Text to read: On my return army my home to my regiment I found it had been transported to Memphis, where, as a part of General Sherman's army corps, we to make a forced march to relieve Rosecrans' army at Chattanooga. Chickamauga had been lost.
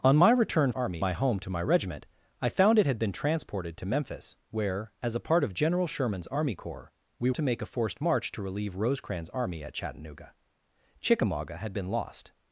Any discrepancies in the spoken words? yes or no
no